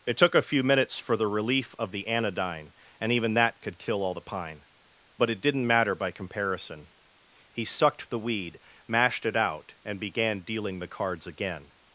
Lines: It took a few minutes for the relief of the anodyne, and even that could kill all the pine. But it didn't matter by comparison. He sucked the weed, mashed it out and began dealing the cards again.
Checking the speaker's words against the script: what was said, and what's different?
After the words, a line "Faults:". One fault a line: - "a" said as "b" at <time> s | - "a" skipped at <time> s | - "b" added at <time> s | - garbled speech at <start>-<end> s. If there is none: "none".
It took a few minutes for the relief of the anodyne, and even that could kill all the pine. But it didn't matter by comparison. He sucked the weed, mashed it out and began dealing the cards again.
Faults:
none